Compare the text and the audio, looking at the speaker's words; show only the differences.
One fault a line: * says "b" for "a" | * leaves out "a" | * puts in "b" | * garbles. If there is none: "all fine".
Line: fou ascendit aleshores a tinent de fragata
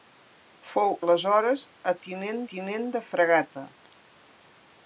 * leaves out "ascendit"
* puts in "tinent"